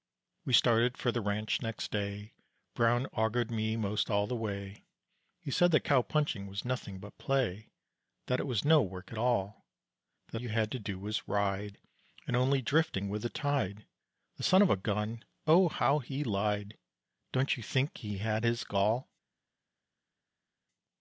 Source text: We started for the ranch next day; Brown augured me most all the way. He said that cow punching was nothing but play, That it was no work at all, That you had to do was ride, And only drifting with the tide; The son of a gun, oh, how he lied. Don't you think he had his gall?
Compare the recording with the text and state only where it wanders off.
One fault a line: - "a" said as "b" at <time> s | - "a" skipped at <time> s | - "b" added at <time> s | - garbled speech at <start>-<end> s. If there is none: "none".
none